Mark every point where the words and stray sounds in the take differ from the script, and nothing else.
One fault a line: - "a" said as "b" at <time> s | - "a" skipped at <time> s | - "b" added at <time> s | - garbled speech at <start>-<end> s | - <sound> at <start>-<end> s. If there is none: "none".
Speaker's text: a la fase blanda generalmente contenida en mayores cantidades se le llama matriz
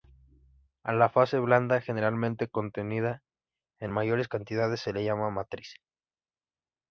none